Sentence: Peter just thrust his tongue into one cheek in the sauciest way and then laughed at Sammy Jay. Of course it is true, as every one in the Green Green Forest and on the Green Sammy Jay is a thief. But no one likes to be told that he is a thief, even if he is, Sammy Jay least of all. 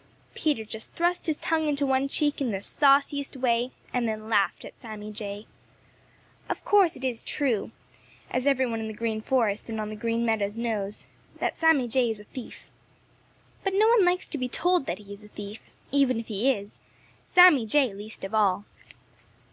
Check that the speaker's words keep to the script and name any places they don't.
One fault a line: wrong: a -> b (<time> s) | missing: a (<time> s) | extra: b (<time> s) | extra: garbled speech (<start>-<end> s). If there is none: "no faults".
missing: Green (9.2 s)
extra: Meadows knows that (10.2 s)